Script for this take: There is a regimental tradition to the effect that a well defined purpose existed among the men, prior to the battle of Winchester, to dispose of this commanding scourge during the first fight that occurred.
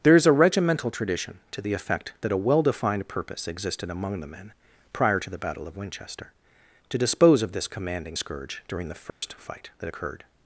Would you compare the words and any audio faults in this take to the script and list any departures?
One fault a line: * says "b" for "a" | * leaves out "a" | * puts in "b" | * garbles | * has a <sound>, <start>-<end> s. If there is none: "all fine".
* has a dropout, 9.1-9.2 s